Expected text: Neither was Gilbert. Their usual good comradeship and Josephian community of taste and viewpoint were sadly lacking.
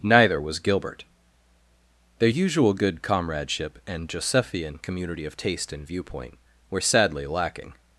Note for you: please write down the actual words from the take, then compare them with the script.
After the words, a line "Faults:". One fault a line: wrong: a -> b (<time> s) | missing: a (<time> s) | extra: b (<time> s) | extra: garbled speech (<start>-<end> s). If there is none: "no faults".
Neither was Gilbert. Their usual good comradeship and Josephian community of taste and viewpoint were sadly lacking.
Faults:
no faults